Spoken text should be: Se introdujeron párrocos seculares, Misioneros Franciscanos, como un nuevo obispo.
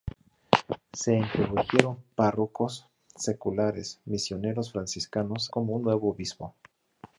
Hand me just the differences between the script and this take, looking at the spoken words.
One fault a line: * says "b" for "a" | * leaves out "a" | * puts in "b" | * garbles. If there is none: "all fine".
all fine